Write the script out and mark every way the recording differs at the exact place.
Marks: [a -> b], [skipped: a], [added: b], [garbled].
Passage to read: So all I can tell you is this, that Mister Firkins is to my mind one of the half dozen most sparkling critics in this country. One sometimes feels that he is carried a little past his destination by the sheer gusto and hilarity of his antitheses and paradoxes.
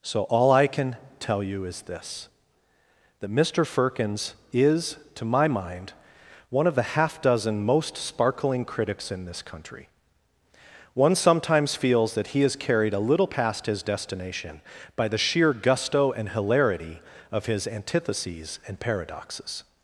So all I can tell you is this, that Mister Firkins is to my mind one of the half dozen most sparkling critics in this country. One sometimes feels that he is carried a little past his destination by the sheer gusto and hilarity of his antitheses and paradoxes.